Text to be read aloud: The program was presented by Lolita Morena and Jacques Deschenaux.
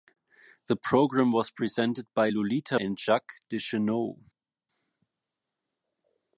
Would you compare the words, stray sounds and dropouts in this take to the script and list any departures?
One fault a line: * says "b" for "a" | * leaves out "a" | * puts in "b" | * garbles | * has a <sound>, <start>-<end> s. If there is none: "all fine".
* leaves out "Morena"